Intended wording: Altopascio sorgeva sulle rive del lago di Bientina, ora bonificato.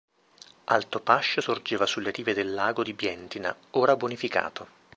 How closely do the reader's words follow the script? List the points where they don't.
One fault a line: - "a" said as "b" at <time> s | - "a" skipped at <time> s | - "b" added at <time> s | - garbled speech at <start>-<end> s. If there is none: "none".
none